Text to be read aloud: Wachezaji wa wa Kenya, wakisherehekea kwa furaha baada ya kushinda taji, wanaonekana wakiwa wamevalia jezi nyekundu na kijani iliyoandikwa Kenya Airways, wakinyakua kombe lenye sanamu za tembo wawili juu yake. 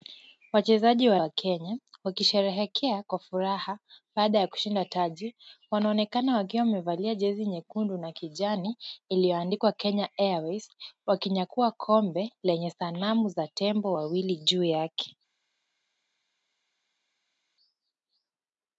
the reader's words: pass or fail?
pass